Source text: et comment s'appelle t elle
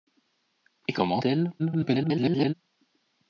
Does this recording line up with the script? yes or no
no